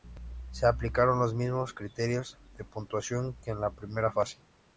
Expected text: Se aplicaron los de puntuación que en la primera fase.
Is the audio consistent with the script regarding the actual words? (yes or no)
no